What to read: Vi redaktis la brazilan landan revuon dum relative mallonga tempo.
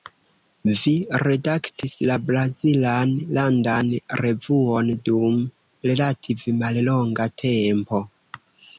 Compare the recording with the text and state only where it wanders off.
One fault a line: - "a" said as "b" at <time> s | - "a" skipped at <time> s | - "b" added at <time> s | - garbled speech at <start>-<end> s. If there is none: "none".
none